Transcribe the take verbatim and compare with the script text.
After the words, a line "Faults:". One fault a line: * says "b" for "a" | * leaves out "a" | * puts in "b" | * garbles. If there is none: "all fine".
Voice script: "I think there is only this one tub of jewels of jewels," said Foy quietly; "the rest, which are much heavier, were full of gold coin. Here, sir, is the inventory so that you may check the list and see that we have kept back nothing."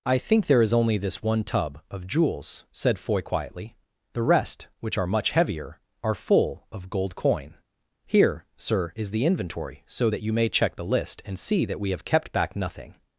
"I think there is only this one tub of jewels," said Foy quietly; "the rest, which are much heavier, are full of gold coin. Here, sir, is the inventory so that you may check the list and see that we have kept back nothing."
Faults:
* leaves out "of jewels"
* says "are" for "were"